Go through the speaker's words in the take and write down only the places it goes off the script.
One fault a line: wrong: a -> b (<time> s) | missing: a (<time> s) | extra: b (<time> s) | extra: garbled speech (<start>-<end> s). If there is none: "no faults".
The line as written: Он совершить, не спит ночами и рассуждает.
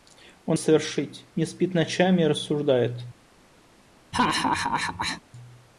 no faults